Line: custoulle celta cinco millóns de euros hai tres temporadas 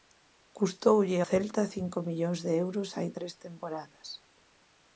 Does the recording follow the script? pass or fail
pass